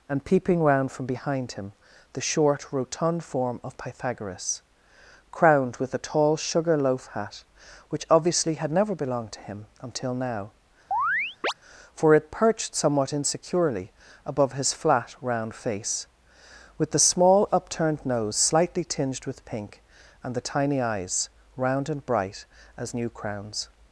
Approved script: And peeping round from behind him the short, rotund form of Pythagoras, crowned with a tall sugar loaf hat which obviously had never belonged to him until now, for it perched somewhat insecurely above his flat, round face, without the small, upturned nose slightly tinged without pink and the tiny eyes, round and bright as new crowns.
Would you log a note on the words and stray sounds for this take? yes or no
yes